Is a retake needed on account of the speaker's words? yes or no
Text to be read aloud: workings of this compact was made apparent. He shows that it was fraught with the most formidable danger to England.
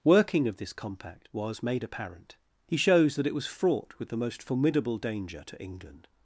yes